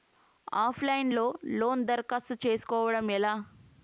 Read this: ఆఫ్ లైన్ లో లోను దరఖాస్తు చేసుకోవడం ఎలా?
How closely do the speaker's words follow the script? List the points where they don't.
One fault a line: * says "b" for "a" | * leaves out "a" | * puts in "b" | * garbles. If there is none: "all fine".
all fine